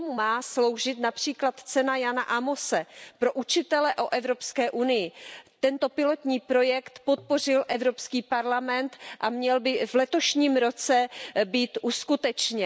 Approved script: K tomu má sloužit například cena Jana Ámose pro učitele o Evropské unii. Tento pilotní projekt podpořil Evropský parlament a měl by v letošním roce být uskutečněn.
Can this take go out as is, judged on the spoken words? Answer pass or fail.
pass